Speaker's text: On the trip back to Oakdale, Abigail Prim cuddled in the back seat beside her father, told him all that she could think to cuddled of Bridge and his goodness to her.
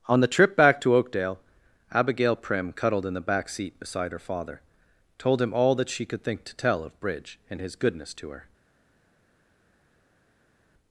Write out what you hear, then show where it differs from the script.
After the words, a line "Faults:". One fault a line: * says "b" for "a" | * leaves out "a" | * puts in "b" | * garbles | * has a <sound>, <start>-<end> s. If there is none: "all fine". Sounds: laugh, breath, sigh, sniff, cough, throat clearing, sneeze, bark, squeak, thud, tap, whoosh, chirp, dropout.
On the trip back to Oakdale, Abigail Prim cuddled in the back seat beside her father, told him all that she could think to tell of Bridge and his goodness to her.
Faults:
* says "tell" for "cuddled"